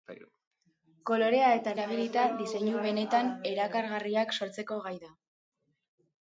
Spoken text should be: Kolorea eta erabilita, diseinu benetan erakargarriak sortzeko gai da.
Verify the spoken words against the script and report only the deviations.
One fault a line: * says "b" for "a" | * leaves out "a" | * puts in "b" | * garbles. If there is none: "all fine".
all fine